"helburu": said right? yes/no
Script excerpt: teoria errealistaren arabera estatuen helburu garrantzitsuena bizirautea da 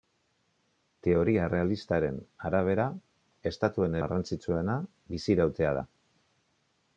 no